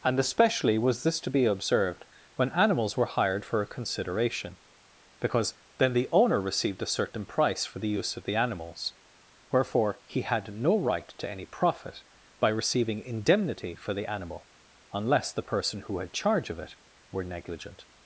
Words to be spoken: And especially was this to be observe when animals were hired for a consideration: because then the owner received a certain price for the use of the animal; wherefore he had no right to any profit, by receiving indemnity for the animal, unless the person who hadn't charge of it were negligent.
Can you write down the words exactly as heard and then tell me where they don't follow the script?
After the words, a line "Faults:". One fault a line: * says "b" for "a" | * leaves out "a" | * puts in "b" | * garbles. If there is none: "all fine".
And especially was this to be observed when animals were hired for a consideration: because then the owner received a certain price for the use of the animals; wherefore he had no right to any profit, by receiving indemnity for the animal, unless the person who had charge of it were negligent.
Faults:
* says "observed" for "observe"
* says "animals" for "animal"
* says "had" for "hadn't"